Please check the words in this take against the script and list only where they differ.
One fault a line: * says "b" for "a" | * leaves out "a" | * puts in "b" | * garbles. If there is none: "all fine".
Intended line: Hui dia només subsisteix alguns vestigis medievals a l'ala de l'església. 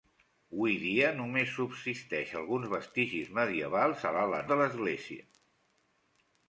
all fine